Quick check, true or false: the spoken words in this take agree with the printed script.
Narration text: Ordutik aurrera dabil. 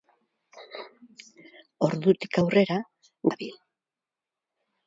true